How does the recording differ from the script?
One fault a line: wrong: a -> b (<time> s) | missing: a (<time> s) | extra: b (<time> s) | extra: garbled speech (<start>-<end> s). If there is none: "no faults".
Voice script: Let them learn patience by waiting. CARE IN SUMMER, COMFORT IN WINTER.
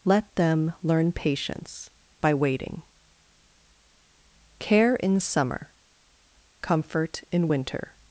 no faults